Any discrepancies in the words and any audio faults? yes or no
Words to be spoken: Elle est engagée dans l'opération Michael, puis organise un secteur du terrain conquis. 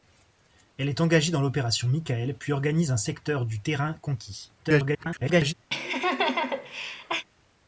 yes